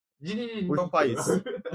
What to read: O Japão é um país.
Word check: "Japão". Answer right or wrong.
wrong